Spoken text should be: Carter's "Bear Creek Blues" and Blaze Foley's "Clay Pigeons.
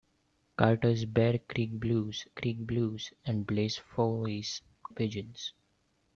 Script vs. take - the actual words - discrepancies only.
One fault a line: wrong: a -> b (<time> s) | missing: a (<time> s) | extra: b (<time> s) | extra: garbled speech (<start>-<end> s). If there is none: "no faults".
extra: Creek Blues (2.3 s)
missing: Clay (4.6 s)